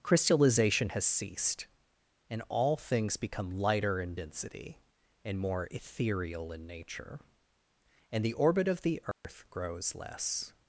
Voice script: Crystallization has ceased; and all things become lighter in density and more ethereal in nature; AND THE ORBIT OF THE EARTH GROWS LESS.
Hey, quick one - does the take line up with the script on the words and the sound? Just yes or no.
no